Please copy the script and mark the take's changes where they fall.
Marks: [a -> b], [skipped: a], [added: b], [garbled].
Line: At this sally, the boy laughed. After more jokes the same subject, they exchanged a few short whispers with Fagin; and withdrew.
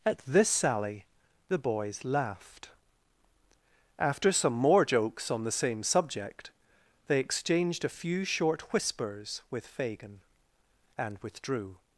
At this sally, the [boy -> boys] laughed. After [added: some] more jokes [added: on] the same subject, they exchanged a few short whispers with Fagin; and withdrew.